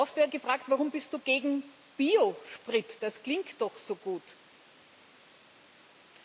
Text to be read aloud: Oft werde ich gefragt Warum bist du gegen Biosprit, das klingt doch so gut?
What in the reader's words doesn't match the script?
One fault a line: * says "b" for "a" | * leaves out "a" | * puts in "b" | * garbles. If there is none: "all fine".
* leaves out "ich"